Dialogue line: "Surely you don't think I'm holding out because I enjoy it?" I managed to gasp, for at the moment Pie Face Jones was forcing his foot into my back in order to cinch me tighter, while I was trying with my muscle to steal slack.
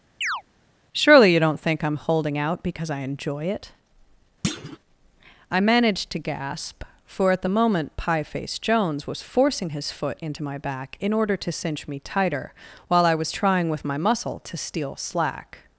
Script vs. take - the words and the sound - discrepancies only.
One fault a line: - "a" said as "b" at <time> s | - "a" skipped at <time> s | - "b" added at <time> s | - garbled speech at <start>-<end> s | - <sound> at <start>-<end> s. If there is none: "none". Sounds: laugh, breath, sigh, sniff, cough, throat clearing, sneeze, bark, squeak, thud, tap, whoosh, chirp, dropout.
- chirp at 0.2-0.4 s
- thud at 4.4-4.8 s